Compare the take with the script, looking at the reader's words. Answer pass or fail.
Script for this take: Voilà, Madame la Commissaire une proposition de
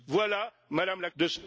fail